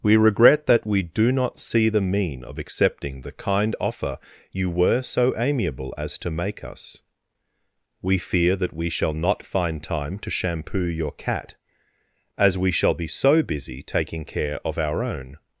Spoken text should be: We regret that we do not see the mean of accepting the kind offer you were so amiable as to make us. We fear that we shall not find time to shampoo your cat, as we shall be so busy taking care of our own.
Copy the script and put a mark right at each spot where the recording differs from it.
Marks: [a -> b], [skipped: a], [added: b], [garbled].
We regret that we do not see the mean of accepting the kind offer you were so amiable as to make us. We fear that we shall not find time to shampoo your cat, as we shall be so busy taking care of our own.